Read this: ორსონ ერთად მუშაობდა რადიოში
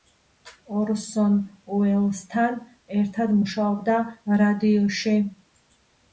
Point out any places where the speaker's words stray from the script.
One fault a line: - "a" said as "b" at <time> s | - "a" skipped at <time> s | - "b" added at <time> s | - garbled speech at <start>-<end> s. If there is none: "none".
- "უელსთან" added at 1.8 s